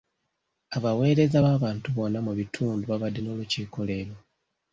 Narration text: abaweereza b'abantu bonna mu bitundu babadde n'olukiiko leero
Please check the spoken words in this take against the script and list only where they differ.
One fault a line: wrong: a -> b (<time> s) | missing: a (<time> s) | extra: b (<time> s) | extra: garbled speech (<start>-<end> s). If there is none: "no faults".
no faults